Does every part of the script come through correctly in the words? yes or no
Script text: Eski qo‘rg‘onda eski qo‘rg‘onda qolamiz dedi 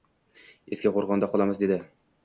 no